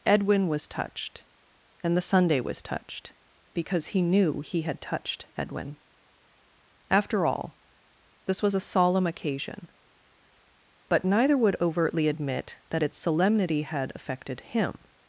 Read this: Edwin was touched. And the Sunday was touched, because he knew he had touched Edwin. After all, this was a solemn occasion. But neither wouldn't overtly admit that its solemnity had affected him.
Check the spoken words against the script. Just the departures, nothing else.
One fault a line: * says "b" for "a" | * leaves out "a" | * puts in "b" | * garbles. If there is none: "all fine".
* says "would" for "wouldn't"